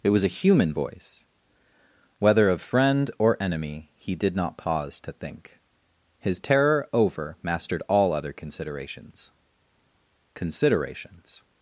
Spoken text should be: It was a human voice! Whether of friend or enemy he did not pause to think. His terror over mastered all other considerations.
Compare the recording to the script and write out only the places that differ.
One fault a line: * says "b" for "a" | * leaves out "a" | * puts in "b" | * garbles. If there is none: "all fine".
* puts in "considerations"